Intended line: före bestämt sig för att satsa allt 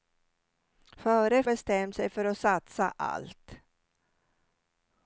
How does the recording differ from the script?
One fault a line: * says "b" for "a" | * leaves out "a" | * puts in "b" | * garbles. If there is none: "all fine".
all fine